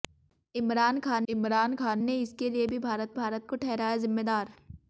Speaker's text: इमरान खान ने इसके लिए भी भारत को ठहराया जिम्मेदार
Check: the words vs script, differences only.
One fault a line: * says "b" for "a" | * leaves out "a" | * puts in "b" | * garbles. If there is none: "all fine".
* puts in "इमरान खान"
* puts in "भारत"